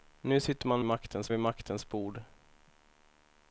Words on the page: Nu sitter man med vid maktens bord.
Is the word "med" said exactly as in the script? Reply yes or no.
no